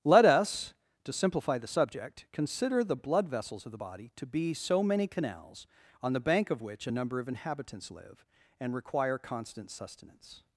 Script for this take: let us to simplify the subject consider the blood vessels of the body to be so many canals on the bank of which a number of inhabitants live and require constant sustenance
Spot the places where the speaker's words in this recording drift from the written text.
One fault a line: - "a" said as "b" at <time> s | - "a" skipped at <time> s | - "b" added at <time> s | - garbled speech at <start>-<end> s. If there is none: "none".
none